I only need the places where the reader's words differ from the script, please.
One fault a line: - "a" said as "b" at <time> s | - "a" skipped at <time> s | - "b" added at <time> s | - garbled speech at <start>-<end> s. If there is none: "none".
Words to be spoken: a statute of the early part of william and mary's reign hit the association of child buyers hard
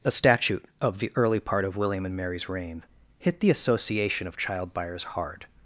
none